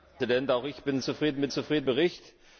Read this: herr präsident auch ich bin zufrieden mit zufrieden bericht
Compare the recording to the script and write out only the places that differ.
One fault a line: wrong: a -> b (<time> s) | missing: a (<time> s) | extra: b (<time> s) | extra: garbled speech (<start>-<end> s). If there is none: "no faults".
no faults